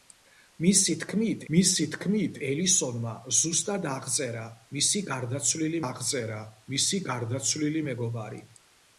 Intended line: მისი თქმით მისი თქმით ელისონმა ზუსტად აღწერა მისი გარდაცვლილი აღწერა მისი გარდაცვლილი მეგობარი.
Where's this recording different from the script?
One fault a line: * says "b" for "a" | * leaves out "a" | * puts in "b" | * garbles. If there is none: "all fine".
all fine